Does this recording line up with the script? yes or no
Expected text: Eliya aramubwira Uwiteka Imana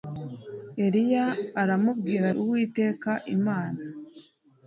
yes